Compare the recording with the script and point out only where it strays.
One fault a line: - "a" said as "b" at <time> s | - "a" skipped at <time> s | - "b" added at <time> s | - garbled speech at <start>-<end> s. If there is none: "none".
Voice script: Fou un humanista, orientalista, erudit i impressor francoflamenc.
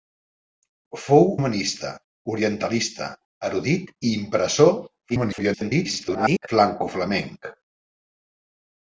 - "un" skipped at 1.3 s
- garbled speech at 5.1-6.5 s